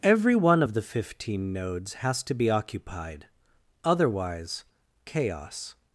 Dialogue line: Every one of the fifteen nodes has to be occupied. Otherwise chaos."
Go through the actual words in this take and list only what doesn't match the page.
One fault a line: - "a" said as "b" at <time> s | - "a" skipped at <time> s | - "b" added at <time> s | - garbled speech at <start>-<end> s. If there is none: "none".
none